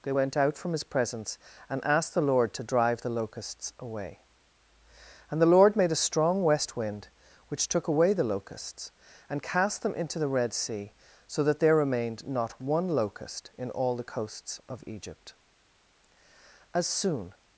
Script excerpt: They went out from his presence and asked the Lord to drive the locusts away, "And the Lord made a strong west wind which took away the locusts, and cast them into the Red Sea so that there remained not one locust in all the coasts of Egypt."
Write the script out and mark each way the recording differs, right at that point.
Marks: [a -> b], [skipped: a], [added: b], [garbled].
They went out from his presence and asked the Lord to drive the locusts away, "And the Lord made a strong west wind which took away the locusts, and cast them into the Red Sea so that there remained not one locust in all the coasts of Egypt." [added: As soon]